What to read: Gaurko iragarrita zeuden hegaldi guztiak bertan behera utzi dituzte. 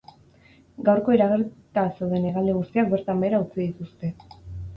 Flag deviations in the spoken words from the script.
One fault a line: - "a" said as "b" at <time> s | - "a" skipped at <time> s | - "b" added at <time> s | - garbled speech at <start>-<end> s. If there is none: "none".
none